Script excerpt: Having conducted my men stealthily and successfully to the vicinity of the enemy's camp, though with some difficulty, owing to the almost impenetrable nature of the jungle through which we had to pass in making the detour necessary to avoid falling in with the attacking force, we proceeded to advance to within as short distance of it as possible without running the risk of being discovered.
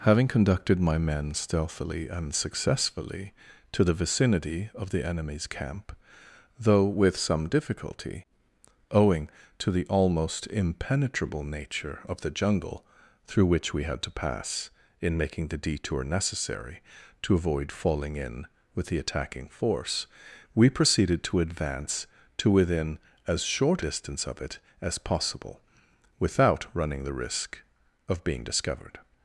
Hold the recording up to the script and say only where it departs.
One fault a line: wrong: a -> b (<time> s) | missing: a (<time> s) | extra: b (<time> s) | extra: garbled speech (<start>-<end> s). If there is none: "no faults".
no faults